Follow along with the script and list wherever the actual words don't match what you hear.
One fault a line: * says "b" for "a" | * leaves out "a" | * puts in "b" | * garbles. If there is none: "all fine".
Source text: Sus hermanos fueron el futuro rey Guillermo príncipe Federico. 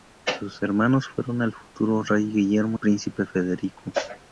all fine